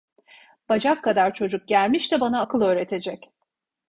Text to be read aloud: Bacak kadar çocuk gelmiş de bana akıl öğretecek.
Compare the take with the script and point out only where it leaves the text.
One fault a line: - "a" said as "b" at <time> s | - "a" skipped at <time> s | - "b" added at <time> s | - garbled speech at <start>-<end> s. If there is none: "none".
none